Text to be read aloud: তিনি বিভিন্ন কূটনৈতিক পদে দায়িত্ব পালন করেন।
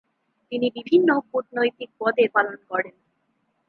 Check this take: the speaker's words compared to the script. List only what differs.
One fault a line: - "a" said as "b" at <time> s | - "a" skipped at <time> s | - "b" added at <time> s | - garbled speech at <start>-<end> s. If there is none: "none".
- "দায়িত্ব" skipped at 2.2 s